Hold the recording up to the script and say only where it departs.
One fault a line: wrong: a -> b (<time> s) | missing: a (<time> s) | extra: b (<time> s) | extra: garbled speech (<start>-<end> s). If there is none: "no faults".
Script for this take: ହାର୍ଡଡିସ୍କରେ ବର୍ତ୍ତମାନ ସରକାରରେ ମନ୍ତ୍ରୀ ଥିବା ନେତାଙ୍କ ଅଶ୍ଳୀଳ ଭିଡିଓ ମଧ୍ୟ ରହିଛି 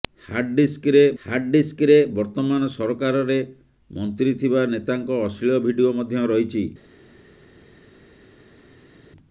extra: ହାର୍ଡଡିସ୍କରେ (1.2 s)